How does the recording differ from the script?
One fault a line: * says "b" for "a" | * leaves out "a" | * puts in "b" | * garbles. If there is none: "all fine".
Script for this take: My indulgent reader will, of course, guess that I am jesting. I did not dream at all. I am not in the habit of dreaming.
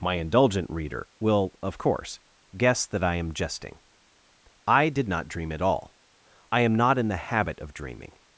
all fine